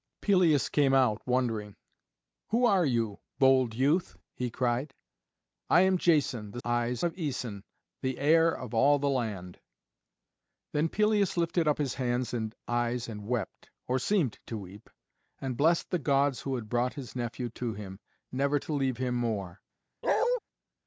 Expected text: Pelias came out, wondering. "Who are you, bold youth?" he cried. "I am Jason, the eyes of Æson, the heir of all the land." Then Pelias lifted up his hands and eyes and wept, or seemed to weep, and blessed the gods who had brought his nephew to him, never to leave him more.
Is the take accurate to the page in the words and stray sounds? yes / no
no